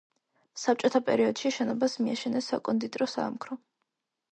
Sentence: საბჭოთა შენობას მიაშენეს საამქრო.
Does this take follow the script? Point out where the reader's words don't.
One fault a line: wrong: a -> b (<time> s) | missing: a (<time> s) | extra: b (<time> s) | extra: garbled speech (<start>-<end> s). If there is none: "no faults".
extra: პერიოდში (1.1 s)
extra: საკონდიტრო (2.6 s)